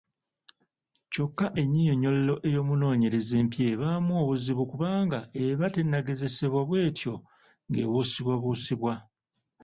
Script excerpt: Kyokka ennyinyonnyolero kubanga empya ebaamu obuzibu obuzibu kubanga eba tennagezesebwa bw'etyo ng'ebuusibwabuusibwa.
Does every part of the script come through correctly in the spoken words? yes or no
no